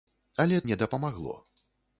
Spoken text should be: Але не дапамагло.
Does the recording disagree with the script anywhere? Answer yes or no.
no